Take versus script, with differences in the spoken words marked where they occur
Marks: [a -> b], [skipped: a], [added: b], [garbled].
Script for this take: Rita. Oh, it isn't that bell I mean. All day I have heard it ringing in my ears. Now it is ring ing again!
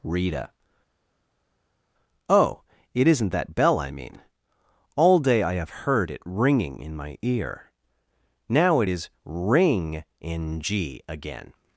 Rita. Oh, it isn't that bell I mean. All day I have heard it ringing in my [ears. -> ear] Now it is ring ing again!